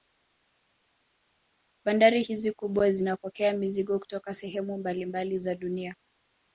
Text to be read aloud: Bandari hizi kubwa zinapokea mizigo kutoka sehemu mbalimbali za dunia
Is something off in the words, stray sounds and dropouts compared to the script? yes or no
no